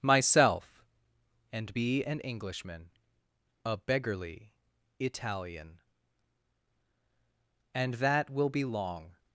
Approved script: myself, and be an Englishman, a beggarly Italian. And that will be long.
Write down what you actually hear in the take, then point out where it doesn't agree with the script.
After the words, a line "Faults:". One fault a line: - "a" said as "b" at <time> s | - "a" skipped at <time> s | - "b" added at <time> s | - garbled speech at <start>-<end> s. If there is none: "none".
myself, and be an Englishman, a beggarly Italian. And that will be long.
Faults:
none